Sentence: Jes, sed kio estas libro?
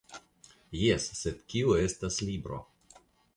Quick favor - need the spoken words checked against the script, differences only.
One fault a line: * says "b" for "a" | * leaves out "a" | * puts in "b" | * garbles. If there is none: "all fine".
all fine